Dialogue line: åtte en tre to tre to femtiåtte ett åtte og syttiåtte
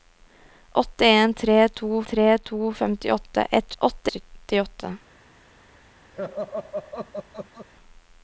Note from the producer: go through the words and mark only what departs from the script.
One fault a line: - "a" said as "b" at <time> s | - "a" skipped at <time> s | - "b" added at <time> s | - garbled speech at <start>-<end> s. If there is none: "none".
none